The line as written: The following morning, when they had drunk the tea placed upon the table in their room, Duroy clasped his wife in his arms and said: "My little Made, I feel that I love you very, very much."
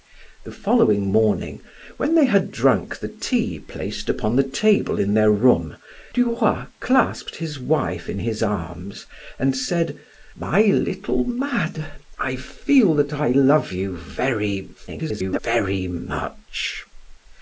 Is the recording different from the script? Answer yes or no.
yes